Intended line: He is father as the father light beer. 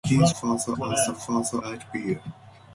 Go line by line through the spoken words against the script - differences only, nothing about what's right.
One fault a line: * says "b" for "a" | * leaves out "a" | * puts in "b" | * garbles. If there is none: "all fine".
all fine